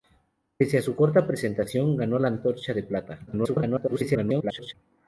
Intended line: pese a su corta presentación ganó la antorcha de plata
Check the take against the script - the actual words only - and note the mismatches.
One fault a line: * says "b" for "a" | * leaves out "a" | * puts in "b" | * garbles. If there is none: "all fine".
* garbles